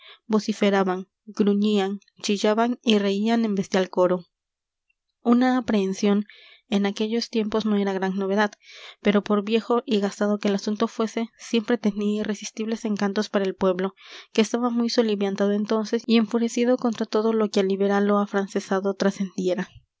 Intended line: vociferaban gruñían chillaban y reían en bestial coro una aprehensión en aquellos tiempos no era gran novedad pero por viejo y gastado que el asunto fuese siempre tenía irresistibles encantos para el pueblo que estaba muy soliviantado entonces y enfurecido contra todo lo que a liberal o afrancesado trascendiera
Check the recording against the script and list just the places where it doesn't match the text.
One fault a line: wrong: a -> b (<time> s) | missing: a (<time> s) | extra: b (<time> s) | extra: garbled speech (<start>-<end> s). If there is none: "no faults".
no faults